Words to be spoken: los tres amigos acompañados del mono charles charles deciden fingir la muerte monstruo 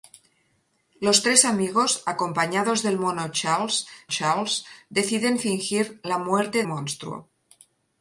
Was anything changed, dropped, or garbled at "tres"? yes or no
no